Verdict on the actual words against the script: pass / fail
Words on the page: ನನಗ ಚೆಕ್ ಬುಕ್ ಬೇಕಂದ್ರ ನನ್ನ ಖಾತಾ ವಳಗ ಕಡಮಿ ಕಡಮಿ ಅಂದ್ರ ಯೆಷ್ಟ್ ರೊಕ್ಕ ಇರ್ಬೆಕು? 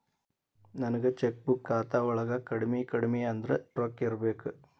fail